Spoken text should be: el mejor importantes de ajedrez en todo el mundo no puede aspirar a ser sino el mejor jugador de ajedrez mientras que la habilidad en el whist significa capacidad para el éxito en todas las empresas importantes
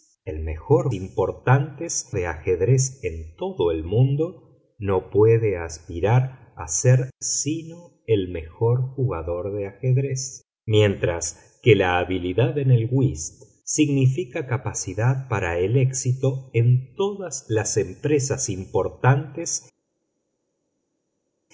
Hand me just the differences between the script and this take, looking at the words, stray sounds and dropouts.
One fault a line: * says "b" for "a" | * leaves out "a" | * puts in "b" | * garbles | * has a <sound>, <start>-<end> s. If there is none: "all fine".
all fine